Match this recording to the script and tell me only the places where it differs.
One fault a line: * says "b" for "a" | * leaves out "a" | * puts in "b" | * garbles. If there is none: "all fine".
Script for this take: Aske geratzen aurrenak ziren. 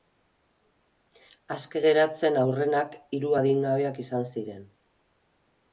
* puts in "hiru adingabeak izan"